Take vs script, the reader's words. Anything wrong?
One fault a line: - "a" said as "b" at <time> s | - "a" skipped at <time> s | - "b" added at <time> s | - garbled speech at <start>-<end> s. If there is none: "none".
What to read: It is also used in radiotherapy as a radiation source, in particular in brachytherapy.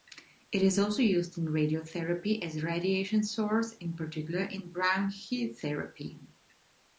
none